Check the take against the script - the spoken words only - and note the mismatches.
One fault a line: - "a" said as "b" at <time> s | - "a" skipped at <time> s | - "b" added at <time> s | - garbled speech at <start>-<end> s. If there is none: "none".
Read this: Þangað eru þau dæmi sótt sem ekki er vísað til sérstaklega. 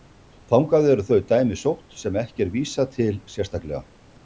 none